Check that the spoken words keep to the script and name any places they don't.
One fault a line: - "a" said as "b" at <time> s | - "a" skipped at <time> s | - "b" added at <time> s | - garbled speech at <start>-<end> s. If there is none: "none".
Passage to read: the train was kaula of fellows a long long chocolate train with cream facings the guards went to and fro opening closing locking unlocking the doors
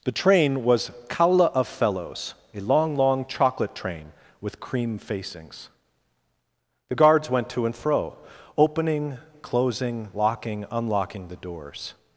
none